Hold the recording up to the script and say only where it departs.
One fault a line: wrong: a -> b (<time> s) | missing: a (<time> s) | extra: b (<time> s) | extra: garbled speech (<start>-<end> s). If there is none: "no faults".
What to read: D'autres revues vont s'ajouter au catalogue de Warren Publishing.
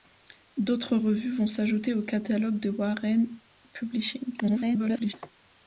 extra: garbled speech (4.4-5.1 s)